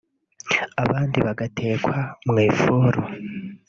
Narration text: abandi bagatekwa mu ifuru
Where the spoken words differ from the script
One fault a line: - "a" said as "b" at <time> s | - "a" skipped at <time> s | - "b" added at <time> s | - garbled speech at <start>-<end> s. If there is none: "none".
none